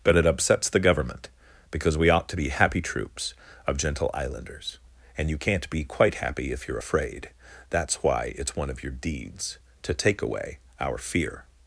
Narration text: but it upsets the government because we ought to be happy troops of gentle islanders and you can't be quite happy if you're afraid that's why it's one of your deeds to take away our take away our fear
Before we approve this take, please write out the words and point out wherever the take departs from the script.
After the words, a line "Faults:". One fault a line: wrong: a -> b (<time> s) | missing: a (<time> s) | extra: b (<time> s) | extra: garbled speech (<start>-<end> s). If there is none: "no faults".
but it upsets the government because we ought to be happy troops of gentle islanders and you can't be quite happy if you're afraid that's why it's one of your deeds to take away our fear
Faults:
missing: take away our (11.0 s)